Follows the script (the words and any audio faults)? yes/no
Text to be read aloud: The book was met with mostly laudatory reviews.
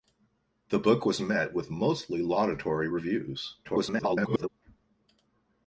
no